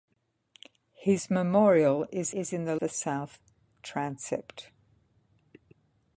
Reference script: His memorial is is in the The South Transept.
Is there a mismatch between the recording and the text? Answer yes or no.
no